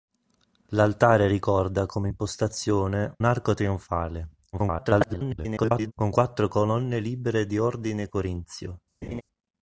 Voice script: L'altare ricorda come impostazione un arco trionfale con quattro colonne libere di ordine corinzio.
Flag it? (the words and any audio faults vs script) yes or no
yes